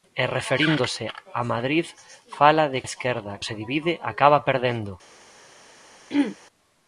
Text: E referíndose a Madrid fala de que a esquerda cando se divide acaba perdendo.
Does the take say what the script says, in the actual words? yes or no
no